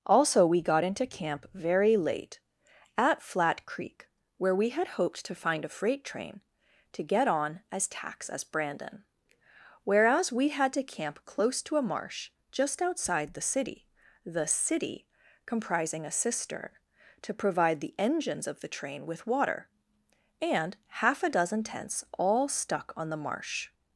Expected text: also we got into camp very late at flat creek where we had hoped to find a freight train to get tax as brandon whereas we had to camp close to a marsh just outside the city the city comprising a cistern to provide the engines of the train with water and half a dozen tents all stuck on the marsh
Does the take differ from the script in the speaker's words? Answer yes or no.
yes